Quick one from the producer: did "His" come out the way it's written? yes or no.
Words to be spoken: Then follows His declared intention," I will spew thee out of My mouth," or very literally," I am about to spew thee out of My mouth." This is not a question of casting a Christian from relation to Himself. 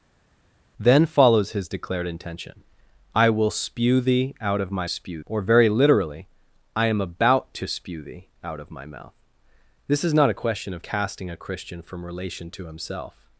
yes